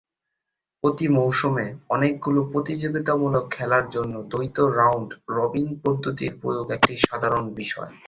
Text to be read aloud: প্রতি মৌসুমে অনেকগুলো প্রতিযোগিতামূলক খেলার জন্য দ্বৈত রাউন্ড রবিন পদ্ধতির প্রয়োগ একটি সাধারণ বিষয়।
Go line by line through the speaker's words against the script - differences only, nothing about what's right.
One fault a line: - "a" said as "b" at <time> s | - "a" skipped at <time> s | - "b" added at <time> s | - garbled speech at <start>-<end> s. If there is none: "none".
none